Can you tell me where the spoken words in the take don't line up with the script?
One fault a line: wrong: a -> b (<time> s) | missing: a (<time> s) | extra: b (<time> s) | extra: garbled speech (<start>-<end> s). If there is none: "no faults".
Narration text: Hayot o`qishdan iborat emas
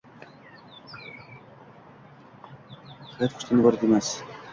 no faults